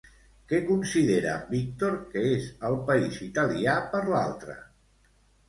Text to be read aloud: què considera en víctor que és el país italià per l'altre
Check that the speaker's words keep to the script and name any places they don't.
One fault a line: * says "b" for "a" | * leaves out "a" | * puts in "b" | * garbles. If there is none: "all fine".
all fine